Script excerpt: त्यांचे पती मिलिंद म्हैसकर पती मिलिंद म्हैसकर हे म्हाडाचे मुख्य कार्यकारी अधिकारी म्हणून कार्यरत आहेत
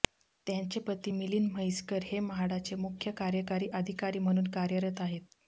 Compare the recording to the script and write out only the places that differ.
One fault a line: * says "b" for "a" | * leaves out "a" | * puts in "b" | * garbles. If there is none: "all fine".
* leaves out "पती मिलिंद म्हैसकर"